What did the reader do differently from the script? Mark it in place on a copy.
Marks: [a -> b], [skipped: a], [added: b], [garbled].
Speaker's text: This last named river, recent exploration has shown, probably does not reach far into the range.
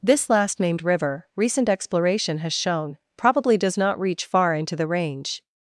This last named river, recent exploration has shown, probably does not reach far into the range.